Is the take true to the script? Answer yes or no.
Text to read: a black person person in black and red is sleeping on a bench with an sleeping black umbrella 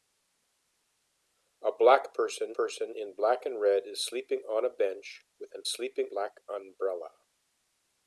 yes